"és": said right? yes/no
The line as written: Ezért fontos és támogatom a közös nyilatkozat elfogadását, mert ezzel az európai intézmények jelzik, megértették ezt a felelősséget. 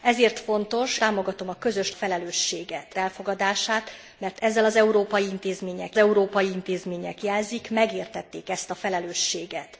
no